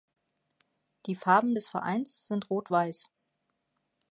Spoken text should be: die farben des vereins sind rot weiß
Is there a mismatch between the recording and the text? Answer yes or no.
no